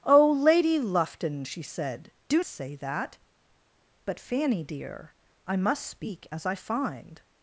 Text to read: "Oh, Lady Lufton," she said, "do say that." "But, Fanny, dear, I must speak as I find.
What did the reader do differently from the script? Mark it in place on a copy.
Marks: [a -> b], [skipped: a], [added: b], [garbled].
"Oh, Lady Lufton," she said, "do say that." "But, Fanny, dear, I must speak as I find.